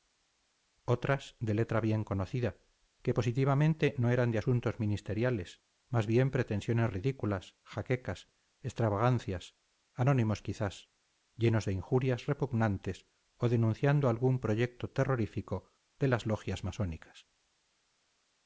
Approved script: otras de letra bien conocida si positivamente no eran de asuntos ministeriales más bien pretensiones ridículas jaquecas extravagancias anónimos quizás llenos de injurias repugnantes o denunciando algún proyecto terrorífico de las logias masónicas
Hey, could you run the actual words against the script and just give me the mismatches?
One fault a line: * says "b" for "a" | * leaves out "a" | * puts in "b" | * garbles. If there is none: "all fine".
* says "que" for "si"